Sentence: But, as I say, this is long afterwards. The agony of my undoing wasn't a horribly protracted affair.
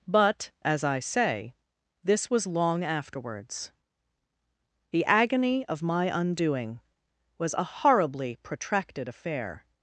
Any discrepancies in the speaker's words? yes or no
yes